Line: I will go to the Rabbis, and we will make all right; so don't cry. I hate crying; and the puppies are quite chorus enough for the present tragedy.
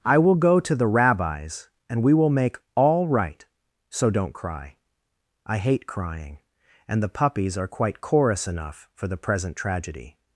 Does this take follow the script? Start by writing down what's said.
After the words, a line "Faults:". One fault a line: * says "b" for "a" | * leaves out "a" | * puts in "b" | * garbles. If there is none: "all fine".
I will go to the Rabbis, and we will make all right; so don't cry. I hate crying; and the puppies are quite chorus enough for the present tragedy.
Faults:
all fine